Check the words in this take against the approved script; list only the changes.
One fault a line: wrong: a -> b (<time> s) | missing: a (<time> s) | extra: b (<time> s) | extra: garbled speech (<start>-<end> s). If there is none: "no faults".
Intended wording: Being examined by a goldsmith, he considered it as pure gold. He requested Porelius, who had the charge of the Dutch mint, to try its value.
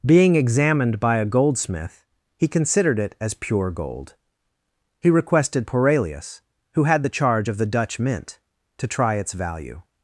no faults